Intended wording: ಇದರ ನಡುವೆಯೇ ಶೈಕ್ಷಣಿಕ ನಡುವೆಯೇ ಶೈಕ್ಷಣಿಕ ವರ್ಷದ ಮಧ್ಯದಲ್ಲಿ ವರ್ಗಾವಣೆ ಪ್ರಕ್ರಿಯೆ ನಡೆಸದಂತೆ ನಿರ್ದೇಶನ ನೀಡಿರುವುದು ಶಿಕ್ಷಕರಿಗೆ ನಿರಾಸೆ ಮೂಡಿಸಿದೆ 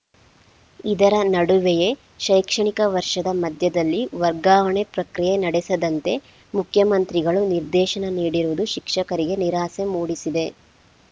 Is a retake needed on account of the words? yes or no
yes